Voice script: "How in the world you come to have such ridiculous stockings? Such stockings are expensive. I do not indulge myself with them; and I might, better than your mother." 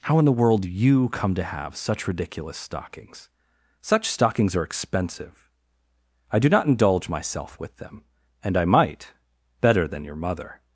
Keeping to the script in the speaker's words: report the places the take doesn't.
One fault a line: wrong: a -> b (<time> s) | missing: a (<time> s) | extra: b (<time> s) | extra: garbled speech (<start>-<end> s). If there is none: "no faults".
no faults